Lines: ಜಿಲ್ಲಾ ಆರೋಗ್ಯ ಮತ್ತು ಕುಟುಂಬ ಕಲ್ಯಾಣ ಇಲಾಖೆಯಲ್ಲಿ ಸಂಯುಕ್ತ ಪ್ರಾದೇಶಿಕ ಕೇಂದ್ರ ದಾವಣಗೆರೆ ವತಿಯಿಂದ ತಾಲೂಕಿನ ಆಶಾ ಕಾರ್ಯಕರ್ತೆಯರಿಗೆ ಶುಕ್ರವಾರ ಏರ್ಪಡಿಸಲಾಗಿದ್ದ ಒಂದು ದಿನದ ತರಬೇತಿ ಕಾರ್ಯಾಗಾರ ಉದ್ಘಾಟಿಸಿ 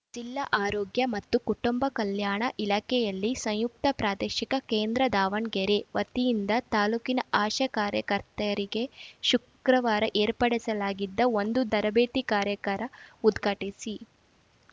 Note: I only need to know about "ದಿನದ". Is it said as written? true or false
false